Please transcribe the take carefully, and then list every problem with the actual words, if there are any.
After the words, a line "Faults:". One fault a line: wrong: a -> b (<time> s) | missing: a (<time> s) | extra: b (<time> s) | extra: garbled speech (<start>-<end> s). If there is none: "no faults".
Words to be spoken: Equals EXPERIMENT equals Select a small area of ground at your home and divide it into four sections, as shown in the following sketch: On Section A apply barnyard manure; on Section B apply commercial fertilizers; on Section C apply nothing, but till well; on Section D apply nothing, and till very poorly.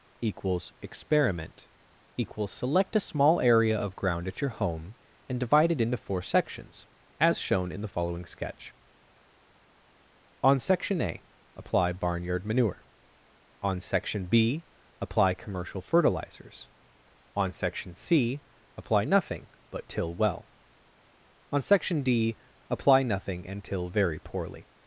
Equals EXPERIMENT equals Select a small area of ground at your home and divide it into four sections, as shown in the following sketch: On Section A apply barnyard manure; on Section B apply commercial fertilizers; on Section C apply nothing, but till well; on Section D apply nothing, and till very poorly.
Faults:
no faults